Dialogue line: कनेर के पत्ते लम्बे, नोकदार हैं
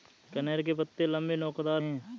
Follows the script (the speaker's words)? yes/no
yes